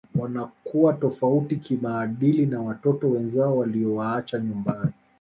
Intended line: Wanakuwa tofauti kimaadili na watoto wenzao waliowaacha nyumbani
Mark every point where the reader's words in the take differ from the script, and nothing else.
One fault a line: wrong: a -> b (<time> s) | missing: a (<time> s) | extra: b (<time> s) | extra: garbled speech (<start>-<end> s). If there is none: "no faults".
no faults